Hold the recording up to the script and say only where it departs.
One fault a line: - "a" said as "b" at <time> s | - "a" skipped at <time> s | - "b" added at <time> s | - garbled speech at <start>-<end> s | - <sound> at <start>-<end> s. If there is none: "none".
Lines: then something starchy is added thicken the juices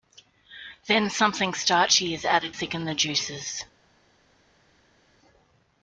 none